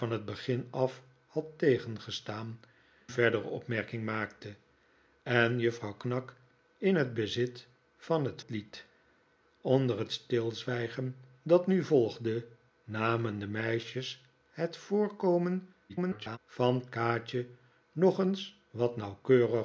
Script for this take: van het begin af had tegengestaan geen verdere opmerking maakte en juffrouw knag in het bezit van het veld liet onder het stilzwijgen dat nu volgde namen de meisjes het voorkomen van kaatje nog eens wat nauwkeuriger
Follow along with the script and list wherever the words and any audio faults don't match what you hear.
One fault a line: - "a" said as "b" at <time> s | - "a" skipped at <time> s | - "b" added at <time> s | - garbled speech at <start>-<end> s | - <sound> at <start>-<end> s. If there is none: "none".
- "geen" skipped at 2.6 s
- "veld" skipped at 8.4 s
- garbled speech at 15.9-16.4 s